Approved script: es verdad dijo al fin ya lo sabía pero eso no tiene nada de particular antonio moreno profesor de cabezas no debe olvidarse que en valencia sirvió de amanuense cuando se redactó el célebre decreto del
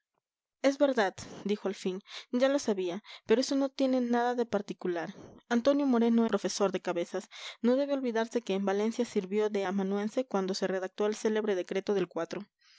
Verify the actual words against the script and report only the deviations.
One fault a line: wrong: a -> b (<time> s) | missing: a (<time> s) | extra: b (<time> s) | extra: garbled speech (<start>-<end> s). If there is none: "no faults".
no faults